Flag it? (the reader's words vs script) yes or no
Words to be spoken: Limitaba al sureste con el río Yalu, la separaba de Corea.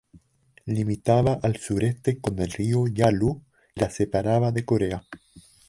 no